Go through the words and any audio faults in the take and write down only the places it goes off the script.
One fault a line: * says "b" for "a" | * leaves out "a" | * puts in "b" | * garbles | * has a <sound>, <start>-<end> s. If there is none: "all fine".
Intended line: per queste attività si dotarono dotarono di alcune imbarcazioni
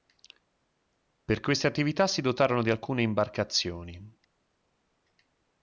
* leaves out "dotarono"